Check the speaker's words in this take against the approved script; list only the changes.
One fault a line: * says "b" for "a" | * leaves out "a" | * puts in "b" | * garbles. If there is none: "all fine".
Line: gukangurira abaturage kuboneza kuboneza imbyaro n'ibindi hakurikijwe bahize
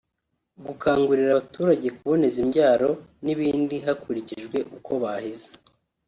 * leaves out "kuboneza"
* puts in "uko"